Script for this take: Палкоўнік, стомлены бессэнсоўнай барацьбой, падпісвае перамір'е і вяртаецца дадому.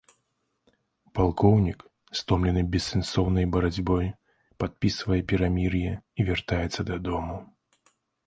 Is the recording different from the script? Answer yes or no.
no